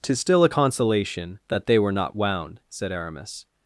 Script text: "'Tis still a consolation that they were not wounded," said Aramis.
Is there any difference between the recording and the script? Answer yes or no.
yes